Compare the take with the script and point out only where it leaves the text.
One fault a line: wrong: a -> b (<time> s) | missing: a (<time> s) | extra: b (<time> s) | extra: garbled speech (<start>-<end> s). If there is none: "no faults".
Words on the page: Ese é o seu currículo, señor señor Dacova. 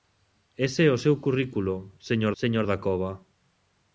no faults